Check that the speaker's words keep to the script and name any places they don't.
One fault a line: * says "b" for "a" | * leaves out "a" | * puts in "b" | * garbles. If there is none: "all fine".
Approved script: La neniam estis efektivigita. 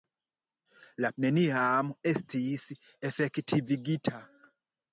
all fine